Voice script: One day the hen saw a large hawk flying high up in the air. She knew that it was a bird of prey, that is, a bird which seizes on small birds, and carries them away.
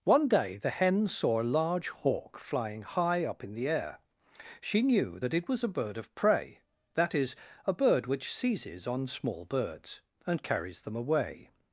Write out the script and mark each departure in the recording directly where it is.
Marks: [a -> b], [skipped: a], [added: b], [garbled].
One day the hen saw a large hawk flying high up in the air. She knew that it was a bird of prey, that is, a bird which seizes on small birds, and carries them away.